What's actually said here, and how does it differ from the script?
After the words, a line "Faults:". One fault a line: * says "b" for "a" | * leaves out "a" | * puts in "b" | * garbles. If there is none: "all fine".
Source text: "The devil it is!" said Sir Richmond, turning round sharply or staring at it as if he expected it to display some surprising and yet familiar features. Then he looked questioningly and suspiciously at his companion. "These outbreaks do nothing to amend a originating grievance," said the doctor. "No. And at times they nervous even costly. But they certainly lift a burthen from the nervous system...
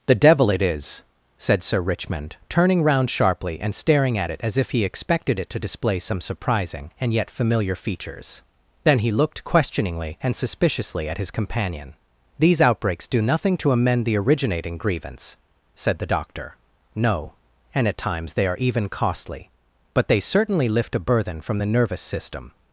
"The devil it is!" said Sir Richmond, turning round sharply and staring at it as if he expected it to display some surprising and yet familiar features. Then he looked questioningly and suspiciously at his companion. "These outbreaks do nothing to amend the originating grievance," said the doctor. "No. And at times they are even costly. But they certainly lift a burthen from the nervous system...
Faults:
* says "and" for "or"
* says "the" for "a"
* says "are" for "nervous"